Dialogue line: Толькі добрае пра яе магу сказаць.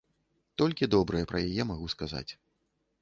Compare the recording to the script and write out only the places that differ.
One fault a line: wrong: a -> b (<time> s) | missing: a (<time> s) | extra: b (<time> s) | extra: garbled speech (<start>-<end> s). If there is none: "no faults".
no faults